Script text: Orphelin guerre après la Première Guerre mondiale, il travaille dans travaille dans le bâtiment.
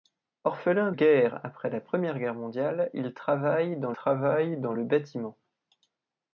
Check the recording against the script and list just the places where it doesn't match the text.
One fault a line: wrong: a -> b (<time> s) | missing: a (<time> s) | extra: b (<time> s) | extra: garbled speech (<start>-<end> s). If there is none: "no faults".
no faults